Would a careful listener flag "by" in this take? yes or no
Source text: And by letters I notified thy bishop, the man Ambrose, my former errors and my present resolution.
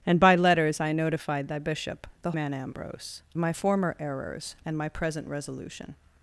no